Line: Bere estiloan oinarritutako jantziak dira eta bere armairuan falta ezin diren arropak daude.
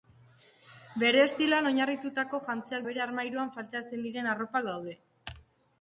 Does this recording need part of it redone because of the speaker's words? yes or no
yes